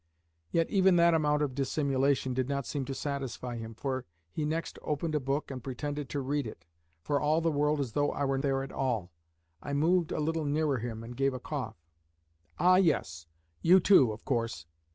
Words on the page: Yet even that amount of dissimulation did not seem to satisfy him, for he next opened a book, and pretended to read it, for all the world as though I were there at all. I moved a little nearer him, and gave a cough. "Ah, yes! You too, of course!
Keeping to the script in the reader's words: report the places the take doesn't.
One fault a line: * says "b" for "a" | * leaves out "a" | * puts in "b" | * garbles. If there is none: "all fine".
all fine